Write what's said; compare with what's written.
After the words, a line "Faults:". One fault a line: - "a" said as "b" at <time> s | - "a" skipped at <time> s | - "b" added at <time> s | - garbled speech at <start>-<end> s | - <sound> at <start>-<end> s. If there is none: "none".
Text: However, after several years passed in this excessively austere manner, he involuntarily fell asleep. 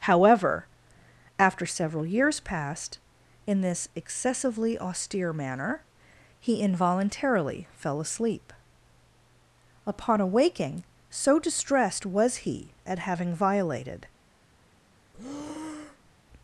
However, after several years passed in this excessively austere manner, he involuntarily fell asleep. Upon awaking, so distressed was he at having violated
Faults:
- "Upon awaking so distressed was he at having violated" added at 9.8 s
- breath at 15.1-16.2 s